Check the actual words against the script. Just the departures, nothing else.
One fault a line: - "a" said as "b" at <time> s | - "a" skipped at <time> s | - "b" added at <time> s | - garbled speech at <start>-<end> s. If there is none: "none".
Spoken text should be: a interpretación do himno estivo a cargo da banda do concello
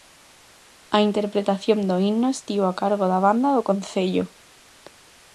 none